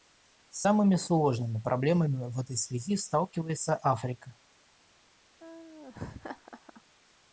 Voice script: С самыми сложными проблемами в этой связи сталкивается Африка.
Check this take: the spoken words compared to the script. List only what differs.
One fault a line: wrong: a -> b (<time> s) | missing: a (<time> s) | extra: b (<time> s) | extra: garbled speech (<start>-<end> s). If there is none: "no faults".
no faults